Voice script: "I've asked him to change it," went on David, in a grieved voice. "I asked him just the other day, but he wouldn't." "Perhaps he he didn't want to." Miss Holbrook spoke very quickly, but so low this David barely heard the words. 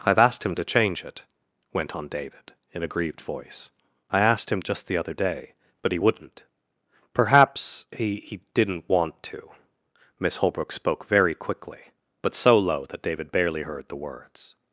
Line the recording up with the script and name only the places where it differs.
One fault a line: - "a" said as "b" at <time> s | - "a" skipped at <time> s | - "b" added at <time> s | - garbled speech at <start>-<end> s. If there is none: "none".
- "this" said as "that" at 12.9 s